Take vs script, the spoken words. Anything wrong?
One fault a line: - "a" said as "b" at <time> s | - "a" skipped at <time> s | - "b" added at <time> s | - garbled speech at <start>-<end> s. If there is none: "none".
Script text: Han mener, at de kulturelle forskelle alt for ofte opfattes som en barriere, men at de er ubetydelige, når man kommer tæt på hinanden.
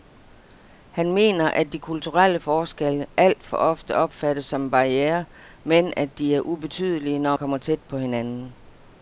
- "man" skipped at 7.4 s